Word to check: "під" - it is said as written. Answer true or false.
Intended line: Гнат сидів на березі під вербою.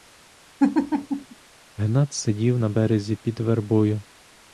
true